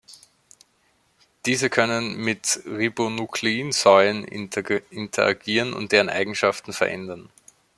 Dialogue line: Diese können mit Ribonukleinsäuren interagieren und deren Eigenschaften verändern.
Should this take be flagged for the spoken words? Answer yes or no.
no